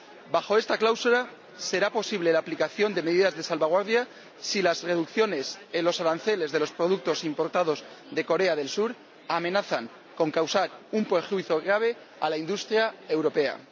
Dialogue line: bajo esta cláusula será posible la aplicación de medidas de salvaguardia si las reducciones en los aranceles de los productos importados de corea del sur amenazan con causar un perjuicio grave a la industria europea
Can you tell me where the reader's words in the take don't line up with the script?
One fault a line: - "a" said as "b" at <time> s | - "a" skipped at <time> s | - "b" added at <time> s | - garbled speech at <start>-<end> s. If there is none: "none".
none